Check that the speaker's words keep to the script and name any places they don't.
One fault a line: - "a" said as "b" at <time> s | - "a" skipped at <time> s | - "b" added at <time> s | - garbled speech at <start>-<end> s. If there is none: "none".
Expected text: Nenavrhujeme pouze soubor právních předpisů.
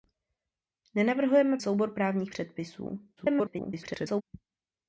- "pouze" skipped at 1.6 s
- garbled speech at 3.2-4.2 s